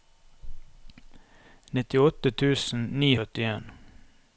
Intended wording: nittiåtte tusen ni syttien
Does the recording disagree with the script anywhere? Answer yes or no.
no